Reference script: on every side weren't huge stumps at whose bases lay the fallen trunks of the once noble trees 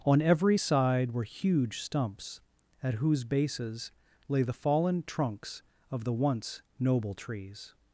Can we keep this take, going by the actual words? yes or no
no